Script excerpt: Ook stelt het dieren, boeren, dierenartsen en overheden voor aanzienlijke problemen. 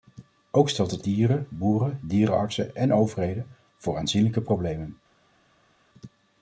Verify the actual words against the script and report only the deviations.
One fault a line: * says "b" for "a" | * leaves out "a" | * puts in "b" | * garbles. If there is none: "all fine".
all fine